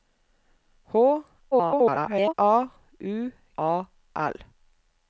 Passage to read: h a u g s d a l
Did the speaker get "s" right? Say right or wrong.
wrong